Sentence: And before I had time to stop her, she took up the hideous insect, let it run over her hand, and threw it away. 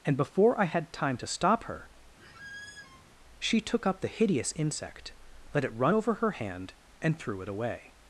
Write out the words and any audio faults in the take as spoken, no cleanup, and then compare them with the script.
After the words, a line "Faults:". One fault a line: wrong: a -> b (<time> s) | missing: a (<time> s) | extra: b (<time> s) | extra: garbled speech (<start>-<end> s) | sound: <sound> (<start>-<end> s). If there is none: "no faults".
And before I had time to stop her, she took up the hideous insect, let it run over her hand, and threw it away.
Faults:
sound: squeak (2.2-3.0 s)